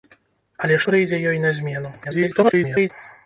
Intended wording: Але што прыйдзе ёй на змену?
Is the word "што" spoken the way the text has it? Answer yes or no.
no